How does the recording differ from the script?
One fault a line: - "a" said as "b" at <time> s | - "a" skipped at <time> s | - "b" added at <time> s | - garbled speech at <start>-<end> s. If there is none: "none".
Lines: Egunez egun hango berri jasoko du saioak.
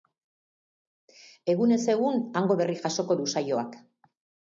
none